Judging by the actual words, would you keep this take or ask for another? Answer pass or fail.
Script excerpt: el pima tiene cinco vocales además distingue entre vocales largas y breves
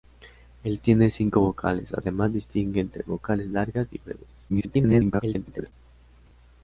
fail